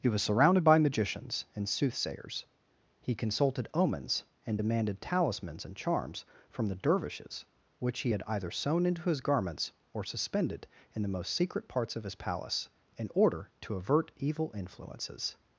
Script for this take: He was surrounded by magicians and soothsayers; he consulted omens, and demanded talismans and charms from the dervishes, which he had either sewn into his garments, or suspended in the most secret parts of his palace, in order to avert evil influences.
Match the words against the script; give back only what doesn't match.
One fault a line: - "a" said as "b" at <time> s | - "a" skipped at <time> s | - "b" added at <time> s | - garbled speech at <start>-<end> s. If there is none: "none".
none